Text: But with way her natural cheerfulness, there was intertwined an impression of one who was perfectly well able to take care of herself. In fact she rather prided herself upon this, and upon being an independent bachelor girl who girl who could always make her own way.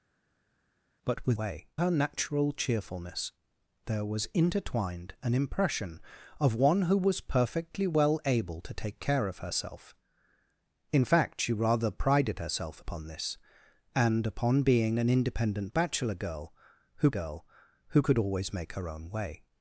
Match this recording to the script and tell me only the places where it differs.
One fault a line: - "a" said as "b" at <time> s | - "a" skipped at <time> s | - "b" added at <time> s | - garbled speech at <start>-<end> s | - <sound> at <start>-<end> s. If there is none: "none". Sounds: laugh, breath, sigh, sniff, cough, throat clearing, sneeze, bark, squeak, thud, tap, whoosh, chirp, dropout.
none